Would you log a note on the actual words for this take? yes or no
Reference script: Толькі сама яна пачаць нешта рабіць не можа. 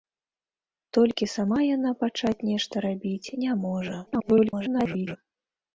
yes